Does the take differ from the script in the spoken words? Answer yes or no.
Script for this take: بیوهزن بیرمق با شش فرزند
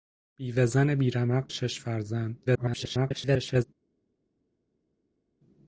yes